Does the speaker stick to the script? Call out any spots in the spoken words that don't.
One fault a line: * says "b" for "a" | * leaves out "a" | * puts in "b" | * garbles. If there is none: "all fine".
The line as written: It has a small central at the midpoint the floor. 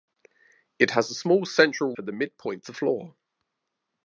all fine